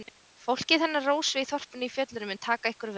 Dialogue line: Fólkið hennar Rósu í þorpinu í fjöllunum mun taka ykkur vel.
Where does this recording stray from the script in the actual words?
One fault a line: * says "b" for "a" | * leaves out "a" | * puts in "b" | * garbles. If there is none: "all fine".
all fine